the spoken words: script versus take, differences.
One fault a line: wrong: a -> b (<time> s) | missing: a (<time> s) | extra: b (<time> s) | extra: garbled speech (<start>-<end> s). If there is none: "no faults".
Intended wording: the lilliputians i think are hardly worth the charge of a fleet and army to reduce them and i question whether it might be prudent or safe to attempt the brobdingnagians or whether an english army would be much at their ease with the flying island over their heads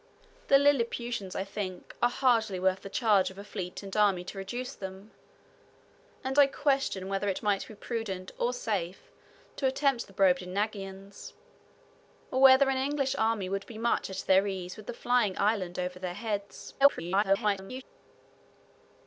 extra: garbled speech (16.8-17.8 s)